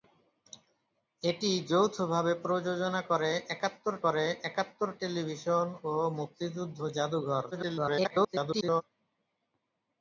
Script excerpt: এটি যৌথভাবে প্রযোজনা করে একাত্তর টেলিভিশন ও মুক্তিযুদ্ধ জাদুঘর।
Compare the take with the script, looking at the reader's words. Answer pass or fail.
fail